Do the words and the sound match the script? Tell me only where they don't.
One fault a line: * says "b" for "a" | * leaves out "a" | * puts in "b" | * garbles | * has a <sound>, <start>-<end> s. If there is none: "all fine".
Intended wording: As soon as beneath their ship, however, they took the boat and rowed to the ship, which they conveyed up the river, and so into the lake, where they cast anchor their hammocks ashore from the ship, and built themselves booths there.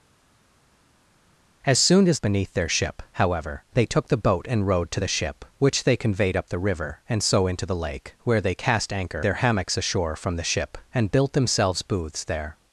all fine